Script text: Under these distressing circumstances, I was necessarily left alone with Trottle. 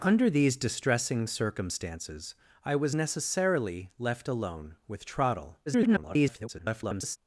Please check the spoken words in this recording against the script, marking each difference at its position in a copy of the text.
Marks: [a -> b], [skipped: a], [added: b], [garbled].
Under these distressing circumstances, I was necessarily left alone with Trottle. [garbled]